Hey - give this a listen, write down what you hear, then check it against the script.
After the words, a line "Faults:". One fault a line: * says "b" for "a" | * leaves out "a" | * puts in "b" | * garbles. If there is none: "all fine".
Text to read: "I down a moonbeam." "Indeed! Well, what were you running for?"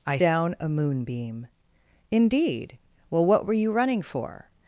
"I down a moonbeam." "Indeed! Well, what were you running for?"
Faults:
all fine